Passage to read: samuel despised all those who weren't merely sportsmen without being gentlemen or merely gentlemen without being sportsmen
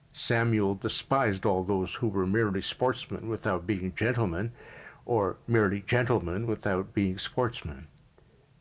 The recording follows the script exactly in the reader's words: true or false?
false